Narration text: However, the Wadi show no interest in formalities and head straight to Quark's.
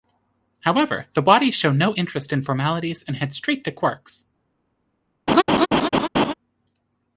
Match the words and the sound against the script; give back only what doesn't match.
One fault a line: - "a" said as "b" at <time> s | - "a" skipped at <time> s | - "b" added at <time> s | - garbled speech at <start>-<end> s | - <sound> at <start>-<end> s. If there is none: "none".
- laugh at 5.3-6.3 s